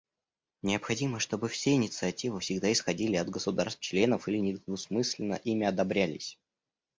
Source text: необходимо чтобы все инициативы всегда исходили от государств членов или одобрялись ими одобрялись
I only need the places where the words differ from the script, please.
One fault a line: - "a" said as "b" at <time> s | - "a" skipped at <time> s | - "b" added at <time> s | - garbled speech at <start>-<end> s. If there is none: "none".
- "одобрялись" said as "недвусмысленно" at 4.4 s